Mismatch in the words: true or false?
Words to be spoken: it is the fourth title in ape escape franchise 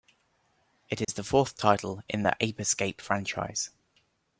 true